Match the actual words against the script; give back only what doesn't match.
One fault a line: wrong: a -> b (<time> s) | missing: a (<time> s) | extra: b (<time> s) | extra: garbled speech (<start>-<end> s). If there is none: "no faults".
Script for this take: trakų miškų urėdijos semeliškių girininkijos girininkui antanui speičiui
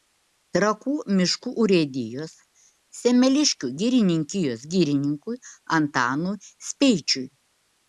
no faults